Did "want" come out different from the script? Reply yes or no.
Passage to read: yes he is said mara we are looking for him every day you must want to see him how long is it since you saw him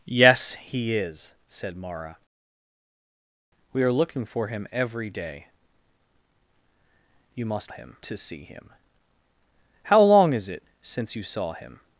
yes